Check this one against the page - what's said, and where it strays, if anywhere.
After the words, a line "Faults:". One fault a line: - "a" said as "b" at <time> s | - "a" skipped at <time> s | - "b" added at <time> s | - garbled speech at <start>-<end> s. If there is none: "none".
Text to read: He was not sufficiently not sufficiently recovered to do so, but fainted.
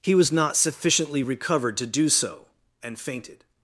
He was not sufficiently recovered to do so, and fainted.
Faults:
- "not sufficiently" skipped at 1.2 s
- "but" said as "and" at 2.8 s